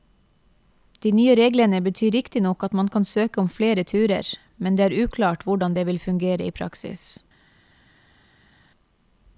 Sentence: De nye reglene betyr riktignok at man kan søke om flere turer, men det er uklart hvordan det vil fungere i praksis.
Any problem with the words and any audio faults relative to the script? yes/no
no